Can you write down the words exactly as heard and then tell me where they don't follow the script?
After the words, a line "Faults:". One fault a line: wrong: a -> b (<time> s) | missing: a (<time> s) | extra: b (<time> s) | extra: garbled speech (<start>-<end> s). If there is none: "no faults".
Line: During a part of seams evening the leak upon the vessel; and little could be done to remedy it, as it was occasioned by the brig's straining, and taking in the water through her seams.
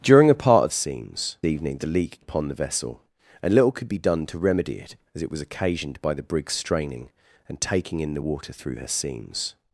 During a part of seams evening the leak upon the vessel; and little could be done to remedy it, as it was occasioned by the brig's straining, and taking in the water through her seams.
Faults:
no faults